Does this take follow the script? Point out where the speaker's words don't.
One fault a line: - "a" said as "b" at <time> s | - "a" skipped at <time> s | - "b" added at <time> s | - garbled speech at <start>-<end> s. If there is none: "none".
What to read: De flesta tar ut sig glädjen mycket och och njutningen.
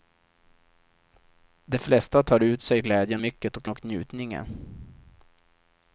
none